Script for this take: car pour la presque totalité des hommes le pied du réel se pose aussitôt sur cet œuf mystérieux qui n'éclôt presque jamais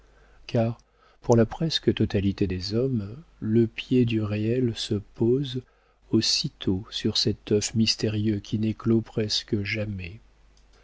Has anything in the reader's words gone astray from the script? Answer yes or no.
no